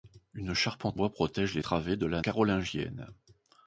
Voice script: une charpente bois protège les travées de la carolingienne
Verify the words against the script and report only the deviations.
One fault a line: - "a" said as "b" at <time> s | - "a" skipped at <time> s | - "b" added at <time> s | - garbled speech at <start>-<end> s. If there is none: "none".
none